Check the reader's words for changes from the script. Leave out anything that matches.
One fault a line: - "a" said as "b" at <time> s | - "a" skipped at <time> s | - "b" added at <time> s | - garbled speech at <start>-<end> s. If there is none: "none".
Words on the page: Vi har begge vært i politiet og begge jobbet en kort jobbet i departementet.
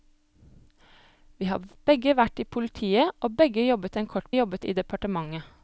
none